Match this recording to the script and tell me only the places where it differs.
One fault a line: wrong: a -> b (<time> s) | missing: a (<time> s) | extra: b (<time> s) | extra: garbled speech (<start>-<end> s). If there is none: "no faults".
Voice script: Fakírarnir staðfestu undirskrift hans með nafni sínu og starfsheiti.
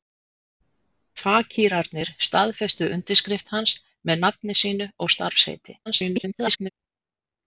extra: garbled speech (5.9-6.7 s)